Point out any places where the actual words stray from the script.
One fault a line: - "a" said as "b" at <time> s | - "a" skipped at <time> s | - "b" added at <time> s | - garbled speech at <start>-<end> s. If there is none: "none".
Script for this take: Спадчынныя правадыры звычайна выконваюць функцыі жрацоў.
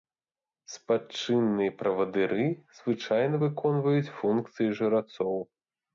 none